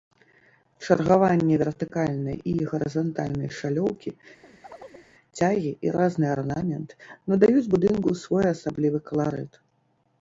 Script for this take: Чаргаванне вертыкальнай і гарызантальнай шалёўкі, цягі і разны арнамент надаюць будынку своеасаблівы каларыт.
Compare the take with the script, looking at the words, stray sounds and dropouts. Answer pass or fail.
fail